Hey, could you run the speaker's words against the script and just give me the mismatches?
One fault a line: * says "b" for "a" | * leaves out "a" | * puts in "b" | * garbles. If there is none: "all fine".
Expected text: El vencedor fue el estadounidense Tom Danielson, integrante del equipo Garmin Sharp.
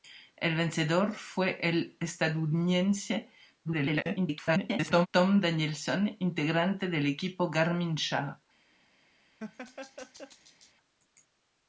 * garbles